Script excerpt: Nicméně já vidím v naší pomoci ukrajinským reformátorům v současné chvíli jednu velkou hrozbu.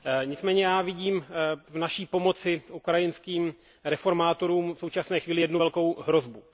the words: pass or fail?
pass